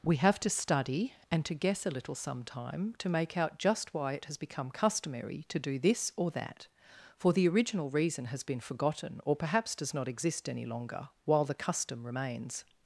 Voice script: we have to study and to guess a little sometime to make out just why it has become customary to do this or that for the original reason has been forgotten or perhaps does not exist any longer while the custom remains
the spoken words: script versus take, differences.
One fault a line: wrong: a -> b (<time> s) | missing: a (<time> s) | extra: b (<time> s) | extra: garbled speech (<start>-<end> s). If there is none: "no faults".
no faults